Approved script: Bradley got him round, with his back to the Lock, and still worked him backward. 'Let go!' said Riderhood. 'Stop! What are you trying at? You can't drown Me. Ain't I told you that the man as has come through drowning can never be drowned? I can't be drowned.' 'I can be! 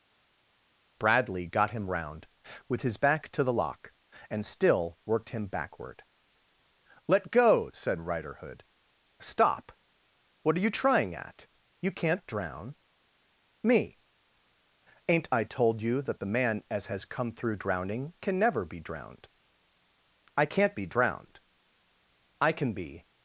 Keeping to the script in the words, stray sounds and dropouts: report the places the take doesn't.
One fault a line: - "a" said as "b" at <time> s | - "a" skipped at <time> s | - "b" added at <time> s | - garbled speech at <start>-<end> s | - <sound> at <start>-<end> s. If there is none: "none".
none